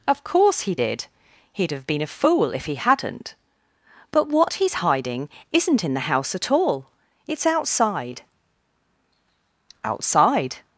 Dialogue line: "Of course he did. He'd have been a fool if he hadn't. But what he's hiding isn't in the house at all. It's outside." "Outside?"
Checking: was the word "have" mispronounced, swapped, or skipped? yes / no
no